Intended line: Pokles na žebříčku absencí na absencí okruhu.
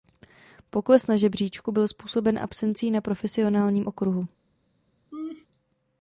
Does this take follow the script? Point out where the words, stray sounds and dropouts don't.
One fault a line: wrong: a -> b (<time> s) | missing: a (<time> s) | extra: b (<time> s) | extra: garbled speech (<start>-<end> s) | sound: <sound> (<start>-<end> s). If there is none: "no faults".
extra: byl způsoben (1.7 s)
wrong: absencí -> profesionálním (3.0 s)
sound: laugh (5.1-5.5 s)